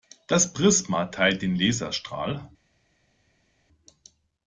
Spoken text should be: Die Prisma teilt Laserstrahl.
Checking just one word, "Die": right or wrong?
wrong